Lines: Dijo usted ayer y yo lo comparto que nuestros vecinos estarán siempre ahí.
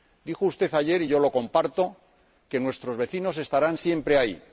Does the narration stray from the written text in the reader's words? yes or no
no